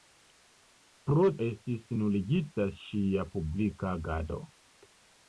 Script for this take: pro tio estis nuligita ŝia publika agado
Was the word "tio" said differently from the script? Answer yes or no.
yes